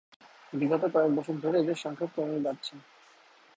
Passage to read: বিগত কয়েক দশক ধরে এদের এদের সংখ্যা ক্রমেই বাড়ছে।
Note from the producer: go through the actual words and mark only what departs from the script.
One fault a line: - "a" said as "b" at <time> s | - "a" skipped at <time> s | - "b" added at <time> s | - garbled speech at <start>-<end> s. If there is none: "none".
- "এদের" skipped at 1.8 s